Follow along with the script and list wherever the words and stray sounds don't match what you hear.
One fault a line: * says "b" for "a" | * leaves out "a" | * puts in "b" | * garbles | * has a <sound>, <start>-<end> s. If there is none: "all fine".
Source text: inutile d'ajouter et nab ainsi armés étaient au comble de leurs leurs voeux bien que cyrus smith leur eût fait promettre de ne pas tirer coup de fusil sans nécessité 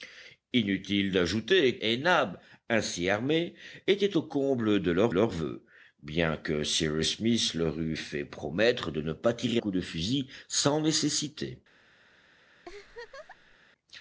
* has a laugh, 12.6-13.6 s